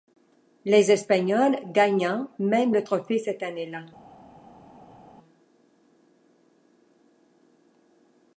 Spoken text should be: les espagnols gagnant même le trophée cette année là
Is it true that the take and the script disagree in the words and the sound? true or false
false